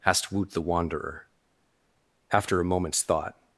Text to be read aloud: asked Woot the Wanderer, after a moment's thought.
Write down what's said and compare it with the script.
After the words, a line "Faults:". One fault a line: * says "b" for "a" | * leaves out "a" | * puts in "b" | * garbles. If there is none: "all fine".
asked Woot the Wanderer, after a moment's thought.
Faults:
all fine